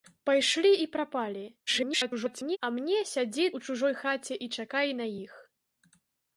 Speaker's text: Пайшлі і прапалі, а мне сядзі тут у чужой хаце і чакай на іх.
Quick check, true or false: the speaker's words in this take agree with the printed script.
false